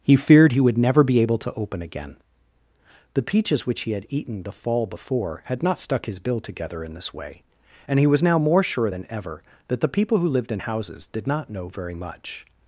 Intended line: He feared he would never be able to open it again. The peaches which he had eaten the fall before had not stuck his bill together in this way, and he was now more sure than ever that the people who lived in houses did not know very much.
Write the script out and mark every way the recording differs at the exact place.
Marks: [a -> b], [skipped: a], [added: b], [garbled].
He feared he would never be able to open [skipped: it] again. The peaches which he had eaten the fall before had not stuck his bill together in this way, and he was now more sure than ever that the people who lived in houses did not know very much.